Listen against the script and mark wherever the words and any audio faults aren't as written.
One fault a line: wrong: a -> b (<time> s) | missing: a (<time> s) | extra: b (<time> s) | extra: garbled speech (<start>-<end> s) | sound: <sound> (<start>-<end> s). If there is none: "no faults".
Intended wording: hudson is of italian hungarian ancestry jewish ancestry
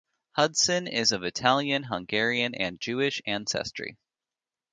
wrong: ancestry -> and (2.5 s)